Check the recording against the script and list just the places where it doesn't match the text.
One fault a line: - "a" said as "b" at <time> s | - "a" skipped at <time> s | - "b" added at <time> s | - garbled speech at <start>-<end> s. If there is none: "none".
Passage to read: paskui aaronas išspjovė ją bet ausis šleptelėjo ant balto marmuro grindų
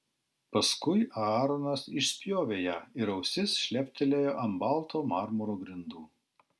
- "bet" said as "ir" at 3.0 s